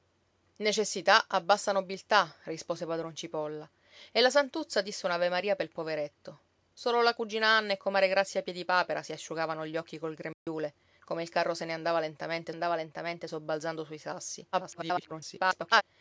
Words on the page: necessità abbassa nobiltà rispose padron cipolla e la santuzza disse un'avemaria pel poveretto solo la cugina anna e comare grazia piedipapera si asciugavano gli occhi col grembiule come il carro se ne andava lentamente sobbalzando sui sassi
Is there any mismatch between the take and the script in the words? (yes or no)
yes